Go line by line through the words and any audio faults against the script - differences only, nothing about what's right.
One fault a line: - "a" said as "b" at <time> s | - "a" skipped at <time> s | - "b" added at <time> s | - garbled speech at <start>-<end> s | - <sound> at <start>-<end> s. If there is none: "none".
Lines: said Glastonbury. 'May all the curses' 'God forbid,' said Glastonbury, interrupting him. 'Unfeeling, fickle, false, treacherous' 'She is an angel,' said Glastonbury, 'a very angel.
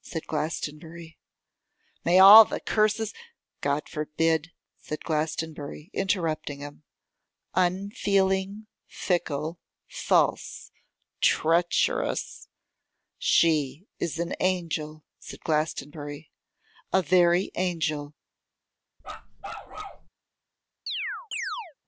- bark at 19.0-20.1 s
- chirp at 20.9-21.7 s